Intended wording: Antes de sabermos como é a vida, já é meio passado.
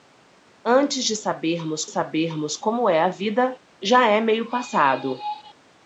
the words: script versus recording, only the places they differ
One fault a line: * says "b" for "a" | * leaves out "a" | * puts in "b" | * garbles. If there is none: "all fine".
* puts in "sabermos"